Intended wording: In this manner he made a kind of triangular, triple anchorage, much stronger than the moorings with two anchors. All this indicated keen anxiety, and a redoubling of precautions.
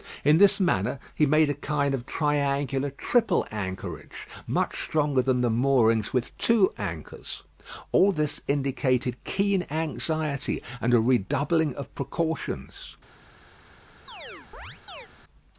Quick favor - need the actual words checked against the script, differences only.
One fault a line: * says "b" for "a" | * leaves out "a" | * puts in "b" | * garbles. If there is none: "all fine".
all fine